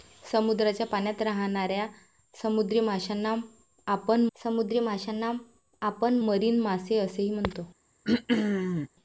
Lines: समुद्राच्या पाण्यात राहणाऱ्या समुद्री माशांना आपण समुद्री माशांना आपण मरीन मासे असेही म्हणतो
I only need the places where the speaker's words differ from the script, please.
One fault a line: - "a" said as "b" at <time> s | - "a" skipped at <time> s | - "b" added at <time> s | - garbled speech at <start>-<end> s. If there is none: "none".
none